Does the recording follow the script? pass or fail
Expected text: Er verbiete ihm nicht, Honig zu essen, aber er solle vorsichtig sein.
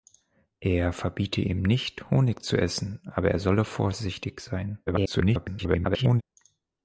fail